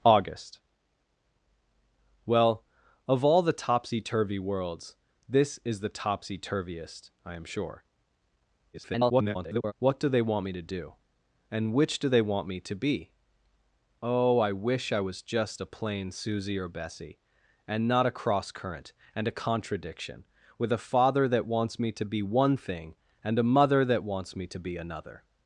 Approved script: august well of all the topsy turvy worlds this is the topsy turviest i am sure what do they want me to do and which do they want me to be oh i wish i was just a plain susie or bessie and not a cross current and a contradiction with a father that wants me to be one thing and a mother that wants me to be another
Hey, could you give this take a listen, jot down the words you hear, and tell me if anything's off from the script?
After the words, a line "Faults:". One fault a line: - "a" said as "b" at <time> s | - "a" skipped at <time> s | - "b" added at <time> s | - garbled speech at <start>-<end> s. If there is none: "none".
august well of all the topsy turvy worlds this is the topsy turviest i am sure [garbled] what do they want me to do and which do they want me to be oh i wish i was just a plain susie or bessie and not a cross current and a contradiction with a father that wants me to be one thing and a mother that wants me to be another
Faults:
- garbled speech at 8.7-9.7 s